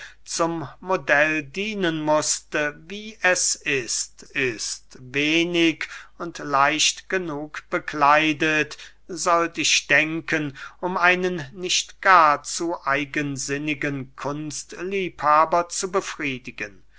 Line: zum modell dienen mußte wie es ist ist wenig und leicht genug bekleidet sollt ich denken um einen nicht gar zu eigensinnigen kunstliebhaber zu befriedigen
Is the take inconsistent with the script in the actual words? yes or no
no